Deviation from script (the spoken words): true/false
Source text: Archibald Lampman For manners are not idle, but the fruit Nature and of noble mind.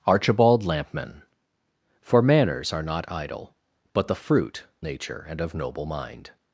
false